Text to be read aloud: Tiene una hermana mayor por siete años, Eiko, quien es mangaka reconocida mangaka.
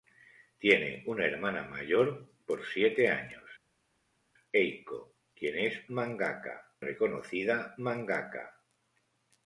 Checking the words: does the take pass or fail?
pass